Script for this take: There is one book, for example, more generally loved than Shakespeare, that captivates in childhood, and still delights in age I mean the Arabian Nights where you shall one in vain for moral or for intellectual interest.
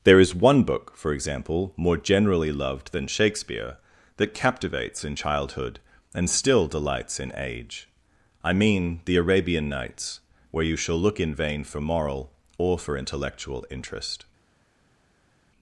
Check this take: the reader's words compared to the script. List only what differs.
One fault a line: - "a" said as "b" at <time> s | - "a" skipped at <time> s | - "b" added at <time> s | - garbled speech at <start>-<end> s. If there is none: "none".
- "one" said as "look" at 11.0 s